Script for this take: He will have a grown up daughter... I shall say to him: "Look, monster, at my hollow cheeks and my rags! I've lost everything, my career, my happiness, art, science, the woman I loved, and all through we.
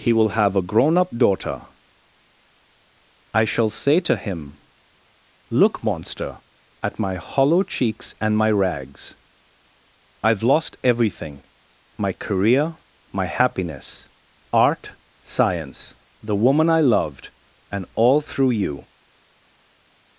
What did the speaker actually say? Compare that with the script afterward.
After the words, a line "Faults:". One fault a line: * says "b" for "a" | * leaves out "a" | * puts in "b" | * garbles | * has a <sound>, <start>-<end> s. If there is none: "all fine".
He will have a grown up daughter... I shall say to him: "Look, monster, at my hollow cheeks and my rags! I've lost everything, my career, my happiness, art, science, the woman I loved, and all through you.
Faults:
* says "you" for "we"